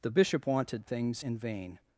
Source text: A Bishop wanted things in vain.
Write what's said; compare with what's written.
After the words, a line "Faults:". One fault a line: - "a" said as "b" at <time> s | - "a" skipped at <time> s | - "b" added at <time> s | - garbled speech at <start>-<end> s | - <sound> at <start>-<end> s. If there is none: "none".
The Bishop wanted things in vain.
Faults:
- "A" said as "The" at 0.0 s